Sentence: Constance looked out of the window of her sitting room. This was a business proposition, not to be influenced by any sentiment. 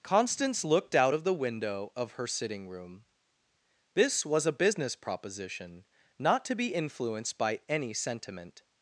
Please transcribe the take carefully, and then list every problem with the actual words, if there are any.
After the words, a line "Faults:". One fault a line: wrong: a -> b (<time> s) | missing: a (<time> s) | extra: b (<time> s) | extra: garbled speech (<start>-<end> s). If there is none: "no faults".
Constance looked out of the window of her sitting room. This was a business proposition, not to be influenced by any sentiment.
Faults:
no faults